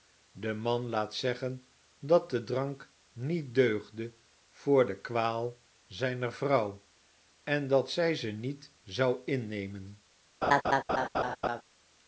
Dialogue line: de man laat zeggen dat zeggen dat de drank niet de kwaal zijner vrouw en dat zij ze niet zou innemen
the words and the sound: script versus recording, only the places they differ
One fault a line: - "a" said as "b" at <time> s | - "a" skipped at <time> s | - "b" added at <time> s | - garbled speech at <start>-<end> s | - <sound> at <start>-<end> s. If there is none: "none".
- "zeggen dat" skipped at 2.3 s
- "deugde voor" added at 3.5 s
- laugh at 10.4-11.6 s